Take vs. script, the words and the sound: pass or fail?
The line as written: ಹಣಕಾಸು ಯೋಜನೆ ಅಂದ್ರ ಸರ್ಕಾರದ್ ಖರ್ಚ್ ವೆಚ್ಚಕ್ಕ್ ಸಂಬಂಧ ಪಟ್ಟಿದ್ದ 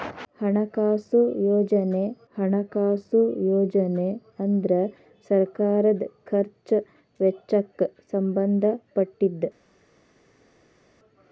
fail